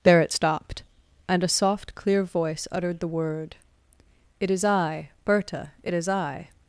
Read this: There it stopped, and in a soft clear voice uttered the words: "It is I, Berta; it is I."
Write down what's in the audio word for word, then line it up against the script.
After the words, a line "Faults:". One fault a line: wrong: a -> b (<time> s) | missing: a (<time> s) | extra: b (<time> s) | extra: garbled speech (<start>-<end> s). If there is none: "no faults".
There it stopped, and a soft clear voice uttered the word: "It is I, Berta; it is I."
Faults:
missing: in (1.4 s)
wrong: words -> word (3.1 s)